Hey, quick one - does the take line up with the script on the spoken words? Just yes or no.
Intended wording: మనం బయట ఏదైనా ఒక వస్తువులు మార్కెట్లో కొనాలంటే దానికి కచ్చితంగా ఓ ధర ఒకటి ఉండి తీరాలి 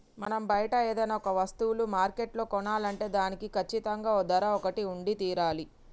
yes